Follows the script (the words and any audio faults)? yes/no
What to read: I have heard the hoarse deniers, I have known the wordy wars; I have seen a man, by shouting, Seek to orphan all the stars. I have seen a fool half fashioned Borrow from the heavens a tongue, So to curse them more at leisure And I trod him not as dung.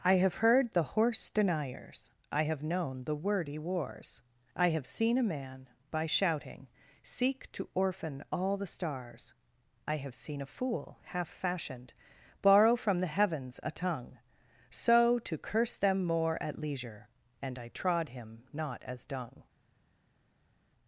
yes